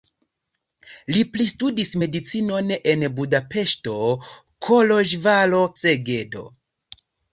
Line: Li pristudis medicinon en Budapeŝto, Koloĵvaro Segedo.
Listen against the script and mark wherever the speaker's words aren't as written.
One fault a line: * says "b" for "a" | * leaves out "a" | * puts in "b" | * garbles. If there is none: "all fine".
all fine